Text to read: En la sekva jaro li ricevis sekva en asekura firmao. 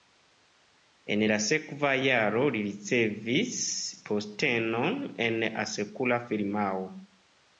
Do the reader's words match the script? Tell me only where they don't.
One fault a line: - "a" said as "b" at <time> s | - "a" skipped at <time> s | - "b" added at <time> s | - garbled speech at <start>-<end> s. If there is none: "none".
- "sekva" said as "postenon" at 4.1 s